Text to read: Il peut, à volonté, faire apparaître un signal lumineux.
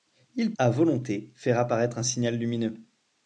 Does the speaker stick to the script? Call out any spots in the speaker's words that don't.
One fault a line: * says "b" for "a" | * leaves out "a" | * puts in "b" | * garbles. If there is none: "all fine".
* leaves out "peut"